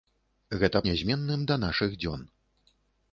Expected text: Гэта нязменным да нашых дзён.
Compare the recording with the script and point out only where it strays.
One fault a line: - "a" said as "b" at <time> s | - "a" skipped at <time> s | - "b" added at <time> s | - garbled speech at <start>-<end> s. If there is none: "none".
none